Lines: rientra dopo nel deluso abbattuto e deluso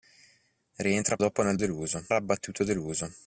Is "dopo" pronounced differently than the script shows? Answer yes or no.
no